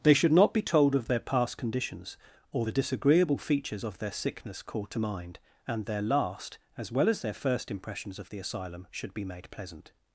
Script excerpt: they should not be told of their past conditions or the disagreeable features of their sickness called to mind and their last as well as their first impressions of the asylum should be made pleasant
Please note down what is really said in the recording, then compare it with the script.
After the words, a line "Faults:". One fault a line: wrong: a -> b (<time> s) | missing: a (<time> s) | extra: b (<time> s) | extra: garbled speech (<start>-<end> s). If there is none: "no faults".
they should not be told of their past conditions or the disagreeable features of their sickness called to mind and their last as well as their first impressions of the asylum should be made pleasant
Faults:
no faults